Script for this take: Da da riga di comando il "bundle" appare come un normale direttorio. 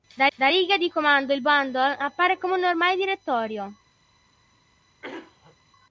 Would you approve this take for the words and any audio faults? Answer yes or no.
no